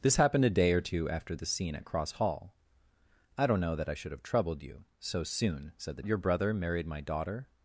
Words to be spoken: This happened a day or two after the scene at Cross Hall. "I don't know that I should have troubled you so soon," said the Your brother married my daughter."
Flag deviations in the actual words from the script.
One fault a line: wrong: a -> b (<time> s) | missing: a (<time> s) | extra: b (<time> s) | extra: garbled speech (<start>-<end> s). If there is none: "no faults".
no faults